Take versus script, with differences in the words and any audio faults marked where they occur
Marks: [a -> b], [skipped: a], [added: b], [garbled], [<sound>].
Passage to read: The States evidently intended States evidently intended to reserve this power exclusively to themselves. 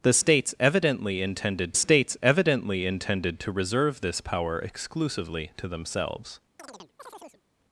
The States evidently intended States evidently intended to reserve this power exclusively to themselves. [chirp]